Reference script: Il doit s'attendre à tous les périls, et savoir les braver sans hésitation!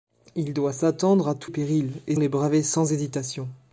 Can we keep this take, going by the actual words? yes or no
no